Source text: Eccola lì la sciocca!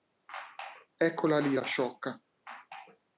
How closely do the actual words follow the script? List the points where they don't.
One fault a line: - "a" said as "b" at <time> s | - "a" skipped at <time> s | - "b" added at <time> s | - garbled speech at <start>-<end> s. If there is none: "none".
none